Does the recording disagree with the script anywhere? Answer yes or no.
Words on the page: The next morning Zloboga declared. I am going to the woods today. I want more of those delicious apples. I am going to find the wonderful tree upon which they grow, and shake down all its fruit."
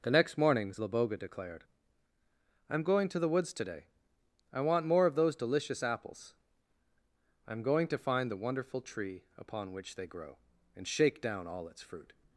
no